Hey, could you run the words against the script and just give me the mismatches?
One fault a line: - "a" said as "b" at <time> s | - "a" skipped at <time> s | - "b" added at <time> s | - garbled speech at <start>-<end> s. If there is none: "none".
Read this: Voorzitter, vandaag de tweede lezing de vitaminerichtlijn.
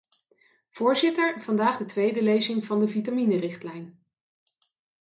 - "van" added at 2.7 s